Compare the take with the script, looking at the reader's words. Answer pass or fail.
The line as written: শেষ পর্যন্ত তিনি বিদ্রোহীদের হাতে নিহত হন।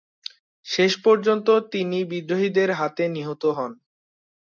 pass